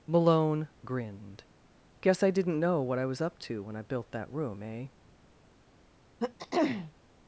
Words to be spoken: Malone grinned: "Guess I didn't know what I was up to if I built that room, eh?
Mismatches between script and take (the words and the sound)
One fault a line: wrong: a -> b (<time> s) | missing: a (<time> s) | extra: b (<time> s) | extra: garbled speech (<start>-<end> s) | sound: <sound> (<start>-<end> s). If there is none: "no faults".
wrong: if -> when (3.6 s)
sound: throat clearing (6.2-6.9 s)